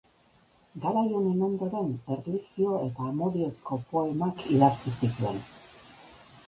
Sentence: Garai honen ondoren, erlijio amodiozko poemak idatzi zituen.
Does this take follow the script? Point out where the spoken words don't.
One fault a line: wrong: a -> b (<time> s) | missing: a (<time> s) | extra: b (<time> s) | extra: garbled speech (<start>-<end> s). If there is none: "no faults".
extra: eta (2.9 s)